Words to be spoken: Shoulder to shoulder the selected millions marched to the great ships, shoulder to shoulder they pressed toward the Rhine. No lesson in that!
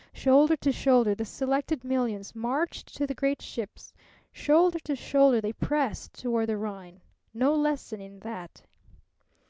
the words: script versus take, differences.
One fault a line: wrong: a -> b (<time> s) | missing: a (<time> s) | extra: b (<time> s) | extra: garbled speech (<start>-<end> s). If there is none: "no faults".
no faults